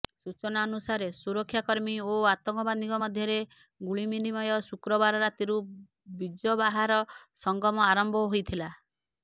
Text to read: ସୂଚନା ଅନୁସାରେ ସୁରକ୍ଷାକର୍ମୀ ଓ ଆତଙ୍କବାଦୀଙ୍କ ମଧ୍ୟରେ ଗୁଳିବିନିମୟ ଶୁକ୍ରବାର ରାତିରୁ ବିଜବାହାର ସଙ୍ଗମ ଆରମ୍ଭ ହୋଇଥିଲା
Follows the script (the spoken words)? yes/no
yes